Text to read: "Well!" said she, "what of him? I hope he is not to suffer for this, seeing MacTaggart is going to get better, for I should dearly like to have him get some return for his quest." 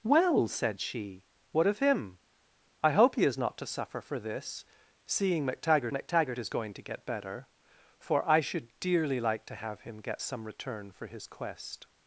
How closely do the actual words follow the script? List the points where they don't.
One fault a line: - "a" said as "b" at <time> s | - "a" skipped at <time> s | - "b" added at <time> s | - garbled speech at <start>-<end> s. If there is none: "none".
- "MacTaggart" added at 5.9 s